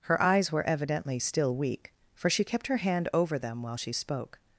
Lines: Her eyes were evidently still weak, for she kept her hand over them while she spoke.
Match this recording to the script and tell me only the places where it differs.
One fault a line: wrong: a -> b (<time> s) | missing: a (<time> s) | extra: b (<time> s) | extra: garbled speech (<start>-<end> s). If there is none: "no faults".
no faults